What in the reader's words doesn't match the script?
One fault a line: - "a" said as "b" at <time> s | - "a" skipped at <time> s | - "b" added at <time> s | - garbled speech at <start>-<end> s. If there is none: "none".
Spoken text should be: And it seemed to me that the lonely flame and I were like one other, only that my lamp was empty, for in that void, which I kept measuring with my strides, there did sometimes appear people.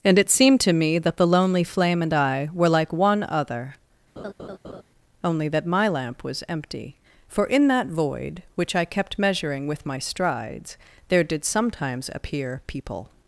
none